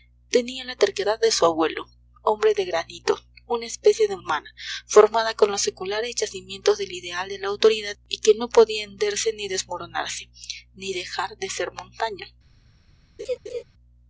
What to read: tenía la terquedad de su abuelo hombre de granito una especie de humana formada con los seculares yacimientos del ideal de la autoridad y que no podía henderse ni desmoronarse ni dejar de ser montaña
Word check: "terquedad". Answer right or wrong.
right